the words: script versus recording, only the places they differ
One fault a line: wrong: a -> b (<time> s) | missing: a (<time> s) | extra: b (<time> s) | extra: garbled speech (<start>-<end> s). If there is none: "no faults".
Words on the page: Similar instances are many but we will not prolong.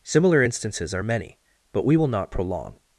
no faults